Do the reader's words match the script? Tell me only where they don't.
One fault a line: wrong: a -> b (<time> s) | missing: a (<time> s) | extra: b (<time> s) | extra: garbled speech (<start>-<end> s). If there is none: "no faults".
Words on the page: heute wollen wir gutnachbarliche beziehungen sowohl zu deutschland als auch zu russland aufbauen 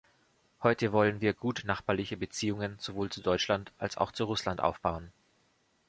no faults